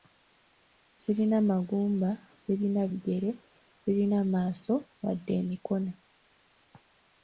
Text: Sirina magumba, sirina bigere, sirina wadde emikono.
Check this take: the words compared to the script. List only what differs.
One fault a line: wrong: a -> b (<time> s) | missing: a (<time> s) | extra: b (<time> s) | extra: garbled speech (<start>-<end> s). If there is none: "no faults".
extra: maaso (4.3 s)